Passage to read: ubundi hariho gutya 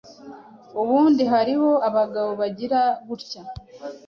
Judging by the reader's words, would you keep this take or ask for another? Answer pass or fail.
fail